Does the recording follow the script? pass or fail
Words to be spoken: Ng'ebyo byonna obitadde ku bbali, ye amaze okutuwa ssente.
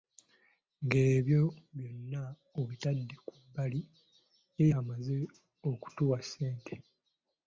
pass